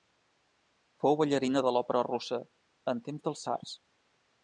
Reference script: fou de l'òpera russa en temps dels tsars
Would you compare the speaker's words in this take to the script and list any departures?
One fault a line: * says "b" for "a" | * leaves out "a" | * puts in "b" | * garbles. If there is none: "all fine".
* puts in "ballarina"